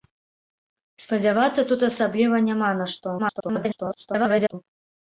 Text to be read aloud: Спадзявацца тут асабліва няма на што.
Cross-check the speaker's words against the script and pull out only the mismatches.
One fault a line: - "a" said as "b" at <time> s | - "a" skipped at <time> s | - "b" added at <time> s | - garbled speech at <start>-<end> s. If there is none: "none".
- garbled speech at 3.2-4.5 s